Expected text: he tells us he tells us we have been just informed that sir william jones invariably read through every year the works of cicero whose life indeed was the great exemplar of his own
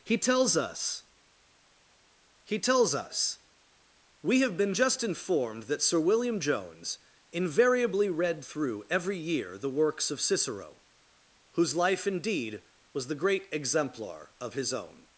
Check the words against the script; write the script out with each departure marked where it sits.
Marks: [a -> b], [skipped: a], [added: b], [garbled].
he tells us he tells us we have been just informed that sir william jones invariably read through every year the works of cicero whose life indeed was the great exemplar of his own